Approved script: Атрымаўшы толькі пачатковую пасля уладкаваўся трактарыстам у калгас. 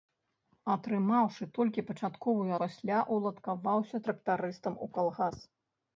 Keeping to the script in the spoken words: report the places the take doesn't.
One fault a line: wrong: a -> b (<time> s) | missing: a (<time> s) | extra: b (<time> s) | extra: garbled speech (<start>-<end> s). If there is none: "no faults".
no faults